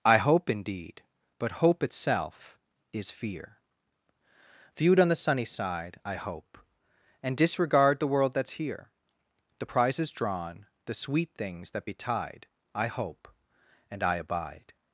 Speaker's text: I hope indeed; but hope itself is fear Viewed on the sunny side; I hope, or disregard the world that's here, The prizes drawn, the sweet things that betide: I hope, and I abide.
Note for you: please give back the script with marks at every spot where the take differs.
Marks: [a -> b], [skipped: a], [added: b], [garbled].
I hope indeed; but hope itself is fear Viewed on the sunny side; I hope, [or -> and] disregard the world that's here, The prizes drawn, the sweet things that betide: I hope, and I abide.